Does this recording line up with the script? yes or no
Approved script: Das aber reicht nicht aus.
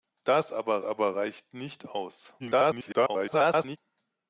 no